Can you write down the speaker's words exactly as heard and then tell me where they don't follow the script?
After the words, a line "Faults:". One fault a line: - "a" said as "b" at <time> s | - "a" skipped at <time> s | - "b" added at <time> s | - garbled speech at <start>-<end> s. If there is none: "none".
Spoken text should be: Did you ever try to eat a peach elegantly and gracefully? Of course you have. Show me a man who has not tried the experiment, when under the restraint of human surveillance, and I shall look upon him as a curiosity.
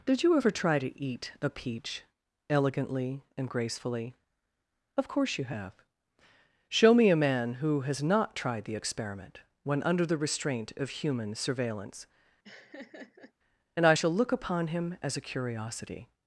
Did you ever try to eat a peach elegantly and gracefully? Of course you have. Show me a man who has not tried the experiment, when under the restraint of human surveillance, and I shall look upon him as a curiosity.
Faults:
none